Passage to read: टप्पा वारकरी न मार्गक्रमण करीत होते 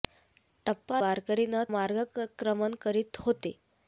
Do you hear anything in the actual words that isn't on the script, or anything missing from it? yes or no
no